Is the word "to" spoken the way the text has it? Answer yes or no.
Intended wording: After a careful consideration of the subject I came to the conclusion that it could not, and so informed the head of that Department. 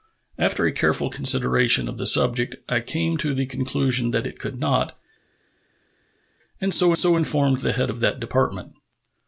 yes